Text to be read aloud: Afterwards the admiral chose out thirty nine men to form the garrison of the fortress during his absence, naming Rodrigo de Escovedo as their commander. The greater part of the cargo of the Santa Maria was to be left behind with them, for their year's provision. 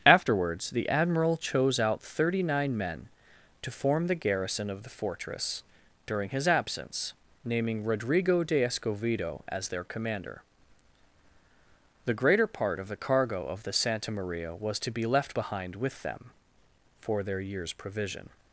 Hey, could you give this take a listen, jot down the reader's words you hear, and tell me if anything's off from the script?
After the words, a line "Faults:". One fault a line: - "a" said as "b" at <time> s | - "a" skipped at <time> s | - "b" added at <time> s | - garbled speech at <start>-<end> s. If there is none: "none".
Afterwards the admiral chose out thirty nine men to form the garrison of the fortress during his absence, naming Rodrigo de Escovedo as their commander. The greater part of the cargo of the Santa Maria was to be left behind with them, for their year's provision.
Faults:
none